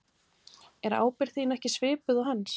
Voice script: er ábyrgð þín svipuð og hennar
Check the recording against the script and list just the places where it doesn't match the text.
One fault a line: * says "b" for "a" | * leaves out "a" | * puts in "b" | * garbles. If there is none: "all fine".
* puts in "ekki"
* says "hans" for "hennar"